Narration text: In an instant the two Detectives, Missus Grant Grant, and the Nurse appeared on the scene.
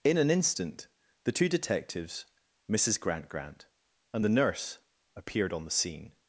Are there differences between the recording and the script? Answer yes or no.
no